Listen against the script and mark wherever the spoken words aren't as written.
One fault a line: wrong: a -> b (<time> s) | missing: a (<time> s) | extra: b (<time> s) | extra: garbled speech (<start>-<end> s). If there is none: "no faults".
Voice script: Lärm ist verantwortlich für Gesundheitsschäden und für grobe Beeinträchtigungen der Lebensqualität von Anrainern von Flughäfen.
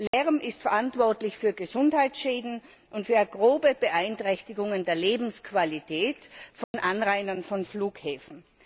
no faults